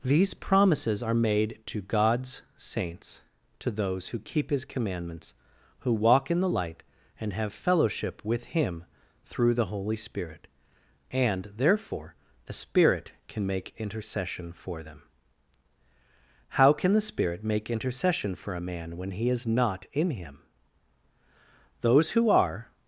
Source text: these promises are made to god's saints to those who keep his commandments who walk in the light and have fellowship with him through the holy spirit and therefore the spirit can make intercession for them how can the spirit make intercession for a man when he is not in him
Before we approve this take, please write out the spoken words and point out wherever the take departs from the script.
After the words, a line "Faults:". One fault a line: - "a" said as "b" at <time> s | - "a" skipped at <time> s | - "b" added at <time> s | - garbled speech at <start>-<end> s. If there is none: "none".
these promises are made to god's saints to those who keep his commandments who walk in the light and have fellowship with him through the holy spirit and therefore the spirit can make intercession for them how can the spirit make intercession for a man when he is not in him those who are
Faults:
- "those who are" added at 21.8 s